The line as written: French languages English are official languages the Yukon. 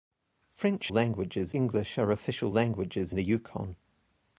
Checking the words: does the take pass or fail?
pass